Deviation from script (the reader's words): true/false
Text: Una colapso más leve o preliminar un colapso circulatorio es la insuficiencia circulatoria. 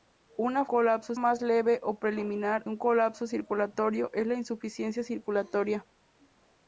false